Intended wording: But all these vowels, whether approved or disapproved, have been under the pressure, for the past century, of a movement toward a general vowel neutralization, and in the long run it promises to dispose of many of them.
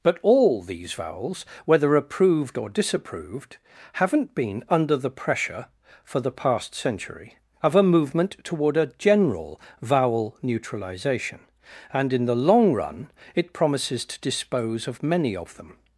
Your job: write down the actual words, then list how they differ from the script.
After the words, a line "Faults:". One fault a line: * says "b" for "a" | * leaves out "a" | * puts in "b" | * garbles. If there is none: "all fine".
But all these vowels, whether approved or disapproved, haven't been under the pressure, for the past century, of a movement toward a general vowel neutralization, and in the long run it promises to dispose of many of them.
Faults:
* says "haven't" for "have"